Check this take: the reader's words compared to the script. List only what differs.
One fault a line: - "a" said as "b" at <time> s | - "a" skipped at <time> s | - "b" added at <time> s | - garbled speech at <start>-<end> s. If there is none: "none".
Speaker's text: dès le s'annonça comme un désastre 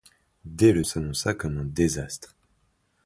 none